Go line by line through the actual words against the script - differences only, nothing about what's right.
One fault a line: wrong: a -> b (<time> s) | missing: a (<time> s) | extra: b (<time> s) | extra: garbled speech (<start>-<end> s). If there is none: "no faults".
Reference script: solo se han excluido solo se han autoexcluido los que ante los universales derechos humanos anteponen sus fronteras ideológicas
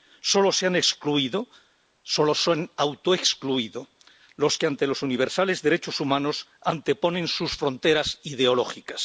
no faults